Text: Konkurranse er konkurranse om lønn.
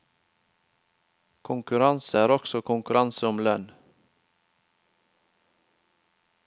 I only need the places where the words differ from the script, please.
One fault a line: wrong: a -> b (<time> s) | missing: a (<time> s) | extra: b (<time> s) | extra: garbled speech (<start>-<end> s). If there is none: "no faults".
extra: også (2.3 s)